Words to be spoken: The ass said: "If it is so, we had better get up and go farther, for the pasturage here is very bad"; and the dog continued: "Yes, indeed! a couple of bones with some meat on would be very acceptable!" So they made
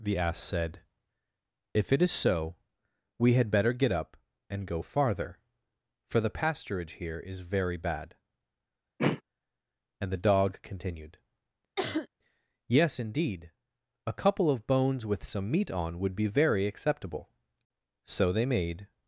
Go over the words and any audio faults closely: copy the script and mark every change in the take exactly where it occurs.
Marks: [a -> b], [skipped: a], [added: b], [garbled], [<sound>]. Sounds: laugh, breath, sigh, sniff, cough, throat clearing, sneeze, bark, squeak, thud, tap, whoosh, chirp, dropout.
The ass said: "If it is so, we had better get up and go farther, for the pasturage here is very bad"; [throat clearing] and the dog continued: [cough] "Yes, indeed! a couple of bones with some meat on would be very acceptable!" So they made